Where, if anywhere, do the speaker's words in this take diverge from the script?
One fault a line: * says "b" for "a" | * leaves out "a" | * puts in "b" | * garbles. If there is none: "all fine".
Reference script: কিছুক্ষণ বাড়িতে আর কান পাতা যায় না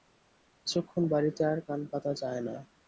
all fine